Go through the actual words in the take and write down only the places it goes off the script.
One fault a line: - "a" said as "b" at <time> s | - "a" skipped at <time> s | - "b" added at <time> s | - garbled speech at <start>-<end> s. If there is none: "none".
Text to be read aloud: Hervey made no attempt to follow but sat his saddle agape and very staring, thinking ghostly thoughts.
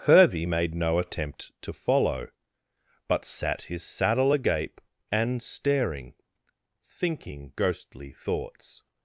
- "very" skipped at 5.4 s